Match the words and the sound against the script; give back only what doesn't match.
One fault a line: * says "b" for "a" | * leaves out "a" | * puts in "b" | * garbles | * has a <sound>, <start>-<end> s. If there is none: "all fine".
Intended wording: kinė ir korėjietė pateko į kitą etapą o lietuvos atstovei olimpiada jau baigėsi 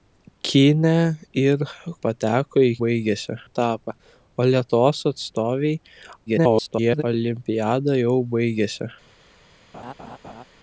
* leaves out "korėjietė"
* says "baigėsi" for "kitą"
* garbles
* has a laugh, 9.7-10.4 s